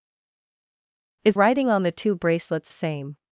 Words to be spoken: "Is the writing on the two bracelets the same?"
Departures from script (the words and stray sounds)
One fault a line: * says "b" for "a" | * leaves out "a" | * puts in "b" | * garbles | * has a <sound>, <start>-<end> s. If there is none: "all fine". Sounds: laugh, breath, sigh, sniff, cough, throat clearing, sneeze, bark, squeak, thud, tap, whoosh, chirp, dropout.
* leaves out "the"
* leaves out "the"